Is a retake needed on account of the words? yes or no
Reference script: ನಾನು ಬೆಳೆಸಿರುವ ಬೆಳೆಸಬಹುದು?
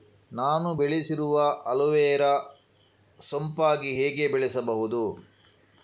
yes